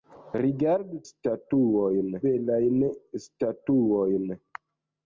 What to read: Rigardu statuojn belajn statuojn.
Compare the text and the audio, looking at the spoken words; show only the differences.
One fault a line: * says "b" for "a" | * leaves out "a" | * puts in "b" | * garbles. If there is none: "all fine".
all fine